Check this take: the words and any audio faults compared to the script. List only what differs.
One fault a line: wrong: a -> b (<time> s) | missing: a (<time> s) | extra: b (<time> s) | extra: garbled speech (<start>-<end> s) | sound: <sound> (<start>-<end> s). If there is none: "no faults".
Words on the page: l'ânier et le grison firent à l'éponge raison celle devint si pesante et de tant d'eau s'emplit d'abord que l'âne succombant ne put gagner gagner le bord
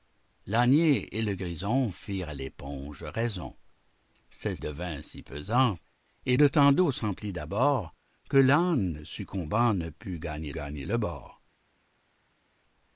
no faults